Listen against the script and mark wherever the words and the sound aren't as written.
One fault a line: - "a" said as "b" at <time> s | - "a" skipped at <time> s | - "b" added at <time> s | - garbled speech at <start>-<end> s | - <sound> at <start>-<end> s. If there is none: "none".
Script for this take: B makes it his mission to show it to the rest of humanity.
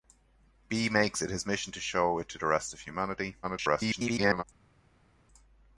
- garbled speech at 3.4-4.4 s